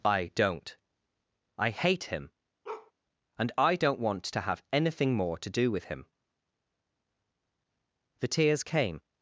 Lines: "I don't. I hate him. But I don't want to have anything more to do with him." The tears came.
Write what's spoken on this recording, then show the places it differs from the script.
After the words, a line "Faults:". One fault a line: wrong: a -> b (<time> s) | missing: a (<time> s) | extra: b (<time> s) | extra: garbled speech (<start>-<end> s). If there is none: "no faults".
"I don't. I hate him. And I don't want to have anything more to do with him." The tears came.
Faults:
wrong: But -> And (3.4 s)